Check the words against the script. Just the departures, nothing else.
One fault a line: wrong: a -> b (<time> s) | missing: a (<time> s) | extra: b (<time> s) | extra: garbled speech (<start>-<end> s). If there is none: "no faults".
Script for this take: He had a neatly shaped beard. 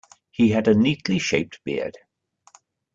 no faults